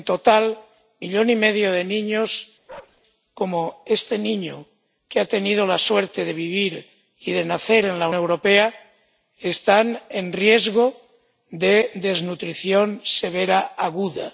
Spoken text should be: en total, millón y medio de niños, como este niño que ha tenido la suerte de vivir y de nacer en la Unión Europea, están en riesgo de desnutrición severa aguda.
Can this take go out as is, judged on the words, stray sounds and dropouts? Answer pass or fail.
fail